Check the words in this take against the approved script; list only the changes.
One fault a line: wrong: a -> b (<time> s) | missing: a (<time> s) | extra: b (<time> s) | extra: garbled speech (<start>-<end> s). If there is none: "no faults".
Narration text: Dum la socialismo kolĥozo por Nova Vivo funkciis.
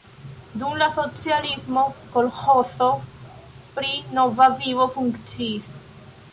wrong: por -> pri (3.8 s)